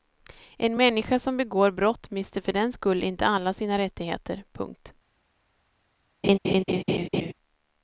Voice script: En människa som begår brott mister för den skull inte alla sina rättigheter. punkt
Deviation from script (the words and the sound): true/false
true